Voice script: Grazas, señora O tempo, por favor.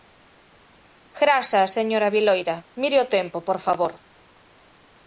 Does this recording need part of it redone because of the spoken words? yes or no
yes